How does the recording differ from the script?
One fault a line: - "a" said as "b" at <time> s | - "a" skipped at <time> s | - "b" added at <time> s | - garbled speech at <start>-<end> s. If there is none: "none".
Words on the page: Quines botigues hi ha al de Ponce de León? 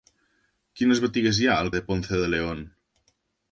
none